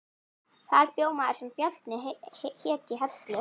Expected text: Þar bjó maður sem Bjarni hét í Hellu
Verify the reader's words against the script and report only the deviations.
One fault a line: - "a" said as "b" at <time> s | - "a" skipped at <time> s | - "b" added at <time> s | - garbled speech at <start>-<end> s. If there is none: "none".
none